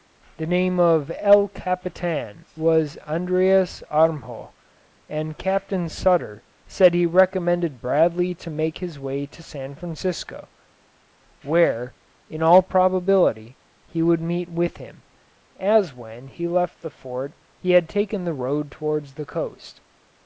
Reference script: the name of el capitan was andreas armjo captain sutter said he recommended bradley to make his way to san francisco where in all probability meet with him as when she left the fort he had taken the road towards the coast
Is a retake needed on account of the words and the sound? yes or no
yes